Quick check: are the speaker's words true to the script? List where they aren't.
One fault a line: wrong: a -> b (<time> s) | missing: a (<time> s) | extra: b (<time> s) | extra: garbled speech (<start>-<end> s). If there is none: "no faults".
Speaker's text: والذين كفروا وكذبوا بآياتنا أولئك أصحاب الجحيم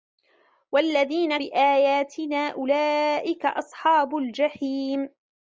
missing: كفروا وكذبوا (1.4 s)